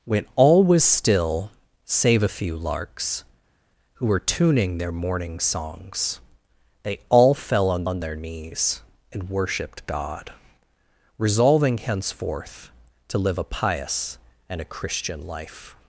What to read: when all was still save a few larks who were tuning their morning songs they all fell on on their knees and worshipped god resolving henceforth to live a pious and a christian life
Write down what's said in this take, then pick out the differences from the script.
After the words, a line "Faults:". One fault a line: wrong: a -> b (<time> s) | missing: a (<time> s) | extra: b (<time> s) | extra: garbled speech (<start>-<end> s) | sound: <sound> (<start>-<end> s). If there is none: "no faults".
when all was still save a few larks who were tuning their morning songs they all fell on on their knees and worshipped god resolving henceforth to live a pious and a christian life
Faults:
no faults